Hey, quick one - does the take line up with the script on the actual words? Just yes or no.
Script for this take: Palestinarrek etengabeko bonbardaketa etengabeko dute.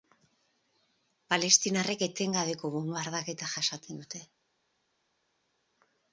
no